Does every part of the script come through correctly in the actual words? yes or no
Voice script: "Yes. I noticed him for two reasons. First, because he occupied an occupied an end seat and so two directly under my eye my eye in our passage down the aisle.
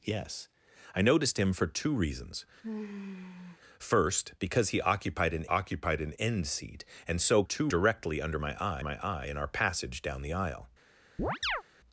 yes